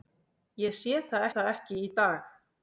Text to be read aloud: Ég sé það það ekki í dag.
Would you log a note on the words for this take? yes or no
no